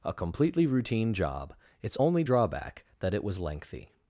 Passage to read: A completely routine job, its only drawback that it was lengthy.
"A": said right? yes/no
yes